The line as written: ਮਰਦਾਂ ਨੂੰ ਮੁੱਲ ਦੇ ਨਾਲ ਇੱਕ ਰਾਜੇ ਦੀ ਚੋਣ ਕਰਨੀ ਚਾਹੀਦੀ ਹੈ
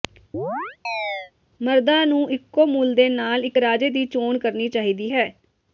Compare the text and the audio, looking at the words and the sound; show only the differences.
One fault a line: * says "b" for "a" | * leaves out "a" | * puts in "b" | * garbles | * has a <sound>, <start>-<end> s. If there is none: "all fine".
* has a chirp, 0.3-1.3 s
* puts in "ਇੱਕੋ"